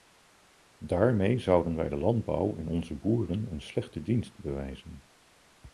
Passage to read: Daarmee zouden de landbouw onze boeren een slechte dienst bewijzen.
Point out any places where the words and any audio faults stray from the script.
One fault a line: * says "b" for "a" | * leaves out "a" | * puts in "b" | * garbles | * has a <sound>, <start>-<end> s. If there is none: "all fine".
* puts in "wij"
* puts in "en"